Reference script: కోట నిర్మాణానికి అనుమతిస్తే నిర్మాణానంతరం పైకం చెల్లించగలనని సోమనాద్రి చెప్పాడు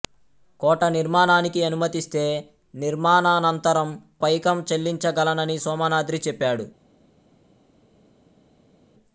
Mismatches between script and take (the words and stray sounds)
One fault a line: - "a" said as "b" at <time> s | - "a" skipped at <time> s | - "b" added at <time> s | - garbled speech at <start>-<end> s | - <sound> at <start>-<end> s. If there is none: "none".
none